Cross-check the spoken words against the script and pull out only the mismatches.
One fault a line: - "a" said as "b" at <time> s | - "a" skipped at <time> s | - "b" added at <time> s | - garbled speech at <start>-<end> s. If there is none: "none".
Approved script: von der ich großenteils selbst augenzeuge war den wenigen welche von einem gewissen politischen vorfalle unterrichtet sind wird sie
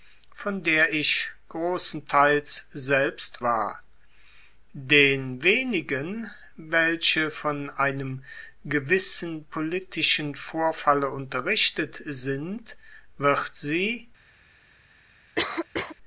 - "augenzeuge" skipped at 3.4 s